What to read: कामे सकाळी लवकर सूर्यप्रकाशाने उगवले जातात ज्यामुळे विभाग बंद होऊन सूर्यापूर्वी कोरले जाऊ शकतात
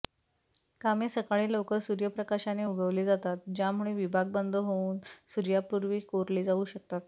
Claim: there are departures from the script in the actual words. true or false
false